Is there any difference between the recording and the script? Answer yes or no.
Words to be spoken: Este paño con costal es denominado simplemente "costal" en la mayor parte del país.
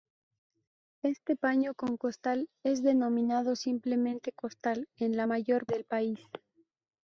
yes